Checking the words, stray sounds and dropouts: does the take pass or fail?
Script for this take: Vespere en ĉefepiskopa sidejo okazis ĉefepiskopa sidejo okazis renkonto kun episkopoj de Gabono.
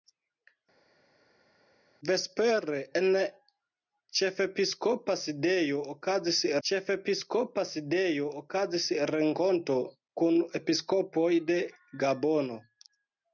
pass